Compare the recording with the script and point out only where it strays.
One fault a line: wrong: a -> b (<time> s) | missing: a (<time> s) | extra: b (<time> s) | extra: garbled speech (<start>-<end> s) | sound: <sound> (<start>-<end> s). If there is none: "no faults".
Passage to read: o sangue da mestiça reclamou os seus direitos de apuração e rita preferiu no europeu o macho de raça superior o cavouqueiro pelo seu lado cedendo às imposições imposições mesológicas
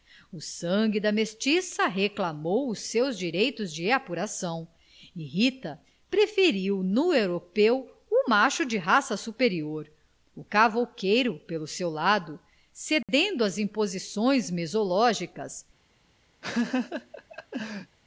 sound: dropout (13.0-13.1 s)
missing: imposições (14.5 s)
sound: laugh (16.4-18.0 s)